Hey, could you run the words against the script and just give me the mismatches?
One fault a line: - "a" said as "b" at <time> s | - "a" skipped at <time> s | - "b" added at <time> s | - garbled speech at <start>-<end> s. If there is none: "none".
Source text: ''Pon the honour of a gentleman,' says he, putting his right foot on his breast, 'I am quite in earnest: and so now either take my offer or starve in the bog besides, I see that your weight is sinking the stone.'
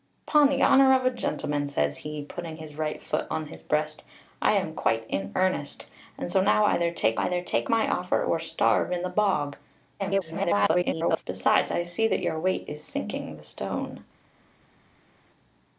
- "either take" added at 7.2 s
- garbled speech at 10.0-11.2 s